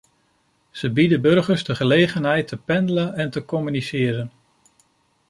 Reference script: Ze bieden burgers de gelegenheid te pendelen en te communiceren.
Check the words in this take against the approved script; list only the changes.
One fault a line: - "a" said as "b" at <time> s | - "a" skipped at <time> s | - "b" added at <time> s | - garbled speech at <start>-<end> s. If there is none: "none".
none